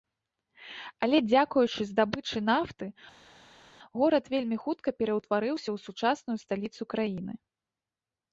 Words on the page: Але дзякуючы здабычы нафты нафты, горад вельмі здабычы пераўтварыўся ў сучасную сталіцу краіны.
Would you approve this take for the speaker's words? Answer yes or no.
no